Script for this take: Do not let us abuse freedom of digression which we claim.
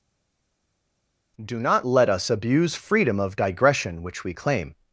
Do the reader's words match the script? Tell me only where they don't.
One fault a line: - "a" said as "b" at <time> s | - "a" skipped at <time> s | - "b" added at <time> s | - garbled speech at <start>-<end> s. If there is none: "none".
none